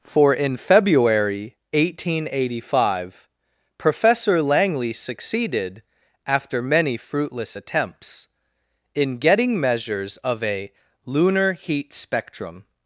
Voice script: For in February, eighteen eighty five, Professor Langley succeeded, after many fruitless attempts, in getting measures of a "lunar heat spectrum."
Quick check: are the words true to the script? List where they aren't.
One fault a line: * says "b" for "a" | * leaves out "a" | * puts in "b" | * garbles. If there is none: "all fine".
all fine